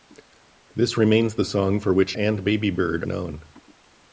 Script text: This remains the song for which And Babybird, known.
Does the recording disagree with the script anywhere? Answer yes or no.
no